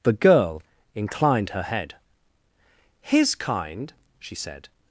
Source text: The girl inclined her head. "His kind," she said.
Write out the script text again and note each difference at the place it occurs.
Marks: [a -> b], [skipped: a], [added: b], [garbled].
The girl inclined her head. "His kind," she said.